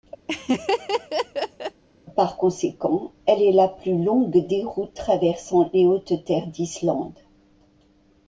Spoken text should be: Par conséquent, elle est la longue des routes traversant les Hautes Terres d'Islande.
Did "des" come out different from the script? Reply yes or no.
no